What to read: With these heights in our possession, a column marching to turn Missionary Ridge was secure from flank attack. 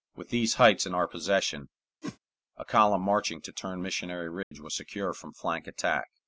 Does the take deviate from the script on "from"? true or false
false